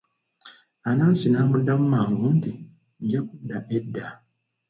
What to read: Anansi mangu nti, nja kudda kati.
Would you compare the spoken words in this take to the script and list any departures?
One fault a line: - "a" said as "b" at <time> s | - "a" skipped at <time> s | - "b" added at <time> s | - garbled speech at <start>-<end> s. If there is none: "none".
- "n'amuddamu" added at 1.3 s
- "kati" said as "edda" at 3.8 s